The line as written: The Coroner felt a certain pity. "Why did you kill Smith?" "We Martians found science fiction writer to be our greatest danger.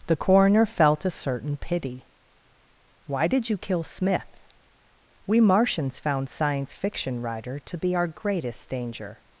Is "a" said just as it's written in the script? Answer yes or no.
yes